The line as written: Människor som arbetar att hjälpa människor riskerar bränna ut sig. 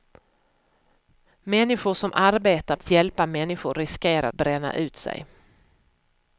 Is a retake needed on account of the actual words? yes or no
no